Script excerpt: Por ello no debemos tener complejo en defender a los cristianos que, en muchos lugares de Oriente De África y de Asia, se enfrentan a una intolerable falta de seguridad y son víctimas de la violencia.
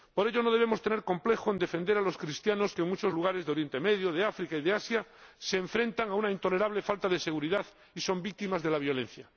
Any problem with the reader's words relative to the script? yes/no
yes